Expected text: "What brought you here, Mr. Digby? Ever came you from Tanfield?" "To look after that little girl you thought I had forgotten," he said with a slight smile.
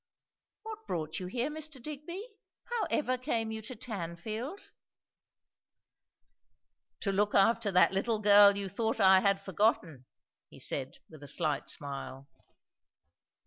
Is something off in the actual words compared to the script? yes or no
yes